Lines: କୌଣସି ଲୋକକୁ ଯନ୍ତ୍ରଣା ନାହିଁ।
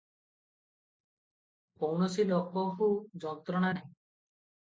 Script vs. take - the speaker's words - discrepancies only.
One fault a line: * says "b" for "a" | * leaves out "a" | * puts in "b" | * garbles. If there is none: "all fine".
all fine